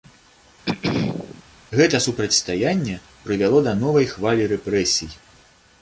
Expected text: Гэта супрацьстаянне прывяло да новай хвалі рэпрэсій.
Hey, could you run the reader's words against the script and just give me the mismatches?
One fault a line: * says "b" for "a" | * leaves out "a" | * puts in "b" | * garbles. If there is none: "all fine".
all fine